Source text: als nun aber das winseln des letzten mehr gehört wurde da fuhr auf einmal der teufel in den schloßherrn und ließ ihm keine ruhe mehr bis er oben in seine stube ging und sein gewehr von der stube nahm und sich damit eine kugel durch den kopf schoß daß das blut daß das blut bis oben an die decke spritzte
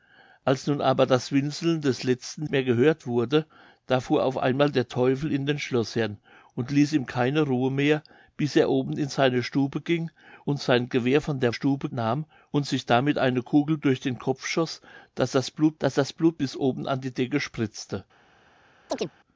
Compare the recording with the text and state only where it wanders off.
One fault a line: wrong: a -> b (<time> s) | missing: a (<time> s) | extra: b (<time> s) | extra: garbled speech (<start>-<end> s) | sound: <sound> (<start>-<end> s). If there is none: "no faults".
sound: chirp (18.9-19.1 s)